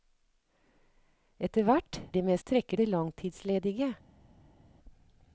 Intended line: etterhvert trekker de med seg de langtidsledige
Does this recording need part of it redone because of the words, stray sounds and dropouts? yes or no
yes